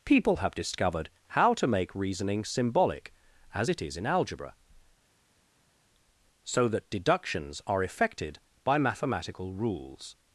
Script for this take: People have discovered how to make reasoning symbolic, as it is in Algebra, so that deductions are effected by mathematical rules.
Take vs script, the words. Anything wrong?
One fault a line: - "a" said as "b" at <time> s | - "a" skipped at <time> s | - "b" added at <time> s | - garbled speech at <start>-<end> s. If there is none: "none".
none